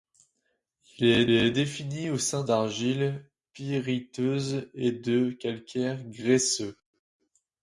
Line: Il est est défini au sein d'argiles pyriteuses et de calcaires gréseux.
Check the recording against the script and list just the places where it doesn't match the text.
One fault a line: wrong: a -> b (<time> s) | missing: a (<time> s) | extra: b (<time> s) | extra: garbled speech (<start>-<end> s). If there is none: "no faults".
no faults